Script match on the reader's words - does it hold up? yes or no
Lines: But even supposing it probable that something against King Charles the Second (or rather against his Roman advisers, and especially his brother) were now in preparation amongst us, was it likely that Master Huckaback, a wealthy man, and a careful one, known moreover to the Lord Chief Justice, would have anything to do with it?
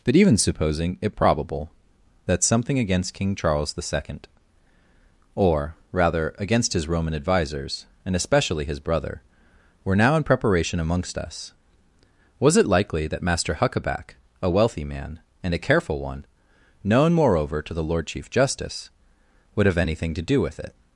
yes